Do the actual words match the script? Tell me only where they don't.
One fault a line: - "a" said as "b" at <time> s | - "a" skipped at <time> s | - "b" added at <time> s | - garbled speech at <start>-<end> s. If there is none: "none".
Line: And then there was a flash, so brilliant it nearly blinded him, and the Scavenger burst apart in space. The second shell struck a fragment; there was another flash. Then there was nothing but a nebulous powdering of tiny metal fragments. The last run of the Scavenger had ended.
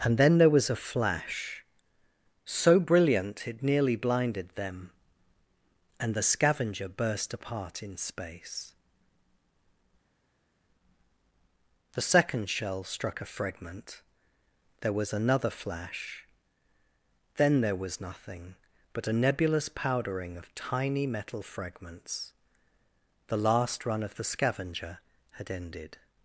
- "him" said as "them" at 4.5 s